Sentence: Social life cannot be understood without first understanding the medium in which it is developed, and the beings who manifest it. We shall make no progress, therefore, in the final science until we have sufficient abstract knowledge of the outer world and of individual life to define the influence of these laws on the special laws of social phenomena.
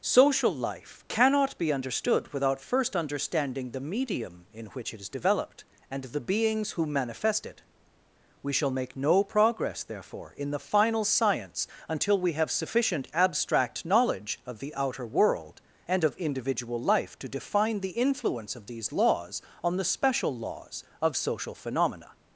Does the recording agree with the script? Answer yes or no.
yes